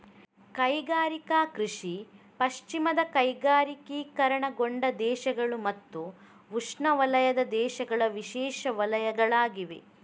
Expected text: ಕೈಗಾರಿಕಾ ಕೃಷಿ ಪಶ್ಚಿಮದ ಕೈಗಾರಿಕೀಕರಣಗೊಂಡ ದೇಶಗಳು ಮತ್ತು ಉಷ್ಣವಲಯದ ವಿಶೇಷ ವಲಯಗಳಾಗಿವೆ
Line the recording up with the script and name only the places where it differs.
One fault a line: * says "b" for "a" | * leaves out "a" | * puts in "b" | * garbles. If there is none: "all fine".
* puts in "ದೇಶಗಳ"